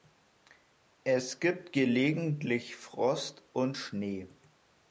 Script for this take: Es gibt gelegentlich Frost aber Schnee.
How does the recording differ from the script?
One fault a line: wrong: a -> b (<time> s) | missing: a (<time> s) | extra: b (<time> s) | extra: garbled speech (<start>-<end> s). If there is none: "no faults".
wrong: aber -> und (3.5 s)